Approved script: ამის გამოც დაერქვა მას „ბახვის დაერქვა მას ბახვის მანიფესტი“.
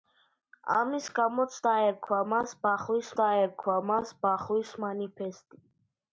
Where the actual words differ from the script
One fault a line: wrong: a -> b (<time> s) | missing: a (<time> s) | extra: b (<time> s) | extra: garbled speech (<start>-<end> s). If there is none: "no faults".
no faults